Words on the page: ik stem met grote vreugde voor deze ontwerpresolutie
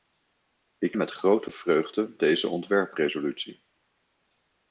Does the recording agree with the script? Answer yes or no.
no